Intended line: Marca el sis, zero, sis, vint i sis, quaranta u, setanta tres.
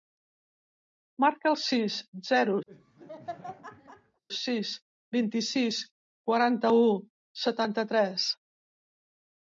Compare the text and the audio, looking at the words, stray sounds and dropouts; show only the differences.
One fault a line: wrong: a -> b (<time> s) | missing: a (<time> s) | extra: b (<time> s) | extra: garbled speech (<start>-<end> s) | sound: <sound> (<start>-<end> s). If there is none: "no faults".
sound: laugh (2.7-4.2 s)